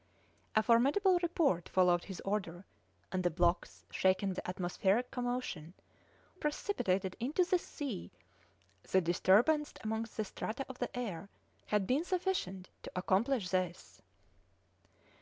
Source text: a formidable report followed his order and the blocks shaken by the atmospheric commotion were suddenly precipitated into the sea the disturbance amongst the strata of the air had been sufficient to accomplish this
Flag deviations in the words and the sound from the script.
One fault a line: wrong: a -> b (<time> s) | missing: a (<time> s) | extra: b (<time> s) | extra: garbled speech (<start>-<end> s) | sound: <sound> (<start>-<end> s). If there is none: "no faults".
missing: by (4.3 s)
missing: were suddenly (5.7 s)